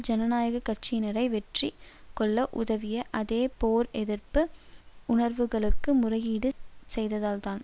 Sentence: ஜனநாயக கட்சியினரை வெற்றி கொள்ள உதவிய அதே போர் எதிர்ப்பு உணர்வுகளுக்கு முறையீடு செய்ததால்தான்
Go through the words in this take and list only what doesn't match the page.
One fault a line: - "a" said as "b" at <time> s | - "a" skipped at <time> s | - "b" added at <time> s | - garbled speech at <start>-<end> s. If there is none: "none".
none